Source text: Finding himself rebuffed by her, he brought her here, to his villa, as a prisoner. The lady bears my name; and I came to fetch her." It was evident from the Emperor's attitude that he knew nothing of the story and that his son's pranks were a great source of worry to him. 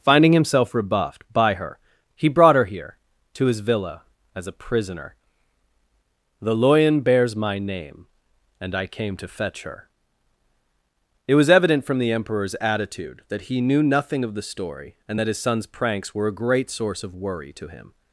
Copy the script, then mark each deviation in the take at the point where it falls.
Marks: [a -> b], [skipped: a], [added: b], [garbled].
Finding himself rebuffed by her, he brought her here, to his villa, as a prisoner. The [lady -> loyan] bears my name; and I came to fetch her." It was evident from the Emperor's attitude that he knew nothing of the story and that his son's pranks were a great source of worry to him.